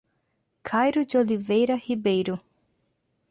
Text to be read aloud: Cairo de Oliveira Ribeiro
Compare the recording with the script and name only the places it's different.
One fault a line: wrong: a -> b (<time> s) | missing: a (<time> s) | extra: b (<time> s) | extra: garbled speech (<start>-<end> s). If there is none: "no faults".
no faults